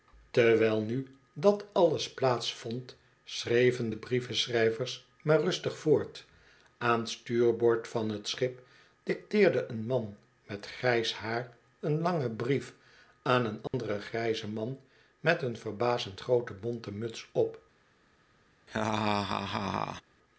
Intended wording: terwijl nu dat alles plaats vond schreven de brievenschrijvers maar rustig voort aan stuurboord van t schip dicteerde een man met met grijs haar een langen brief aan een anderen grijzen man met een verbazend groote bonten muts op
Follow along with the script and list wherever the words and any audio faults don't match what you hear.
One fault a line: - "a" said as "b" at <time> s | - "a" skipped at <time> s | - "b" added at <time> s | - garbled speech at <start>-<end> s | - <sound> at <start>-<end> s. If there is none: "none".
- "met" skipped at 10.7 s
- dropout at 13.7-13.7 s
- laugh at 18.7-20.0 s